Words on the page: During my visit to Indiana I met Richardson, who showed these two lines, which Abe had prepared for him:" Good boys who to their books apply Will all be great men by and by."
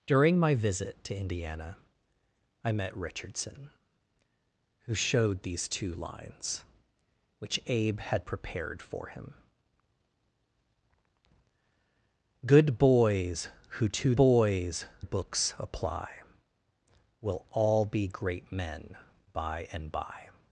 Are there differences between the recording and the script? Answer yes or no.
yes